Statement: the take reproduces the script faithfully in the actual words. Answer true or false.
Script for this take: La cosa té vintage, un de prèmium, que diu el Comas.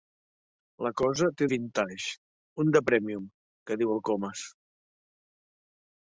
true